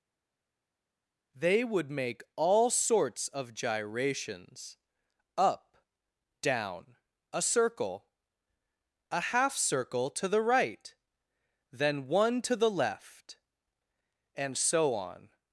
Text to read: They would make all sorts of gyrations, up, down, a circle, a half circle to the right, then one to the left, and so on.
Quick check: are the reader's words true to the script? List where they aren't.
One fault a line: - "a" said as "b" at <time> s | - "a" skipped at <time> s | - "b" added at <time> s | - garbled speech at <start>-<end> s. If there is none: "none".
none